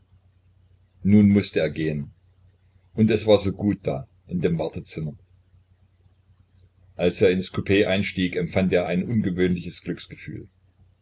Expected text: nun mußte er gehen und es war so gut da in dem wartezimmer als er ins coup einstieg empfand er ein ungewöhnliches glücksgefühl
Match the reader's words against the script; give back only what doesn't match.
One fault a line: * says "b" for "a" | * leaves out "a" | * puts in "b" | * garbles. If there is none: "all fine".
all fine